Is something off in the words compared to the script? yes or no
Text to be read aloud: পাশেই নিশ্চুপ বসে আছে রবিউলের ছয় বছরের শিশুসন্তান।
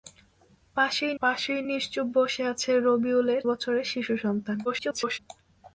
yes